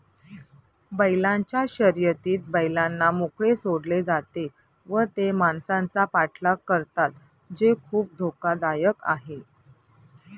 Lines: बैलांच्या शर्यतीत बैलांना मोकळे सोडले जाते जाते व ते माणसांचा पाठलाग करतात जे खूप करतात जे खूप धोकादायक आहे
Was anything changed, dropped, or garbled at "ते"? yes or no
no